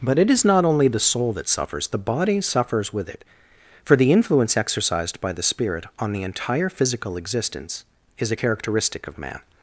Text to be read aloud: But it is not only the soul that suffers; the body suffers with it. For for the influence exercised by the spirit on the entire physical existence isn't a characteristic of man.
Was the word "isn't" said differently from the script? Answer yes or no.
yes